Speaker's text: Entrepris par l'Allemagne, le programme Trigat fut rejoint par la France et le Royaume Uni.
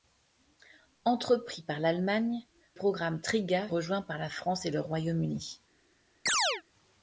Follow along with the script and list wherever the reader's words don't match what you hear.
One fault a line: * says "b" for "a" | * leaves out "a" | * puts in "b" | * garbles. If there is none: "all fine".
* leaves out "le"
* leaves out "fut"